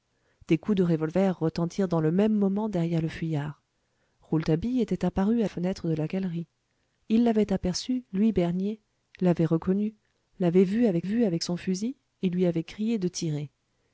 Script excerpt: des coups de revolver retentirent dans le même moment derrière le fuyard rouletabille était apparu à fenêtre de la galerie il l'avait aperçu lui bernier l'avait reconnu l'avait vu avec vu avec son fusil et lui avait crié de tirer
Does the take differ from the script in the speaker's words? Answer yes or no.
no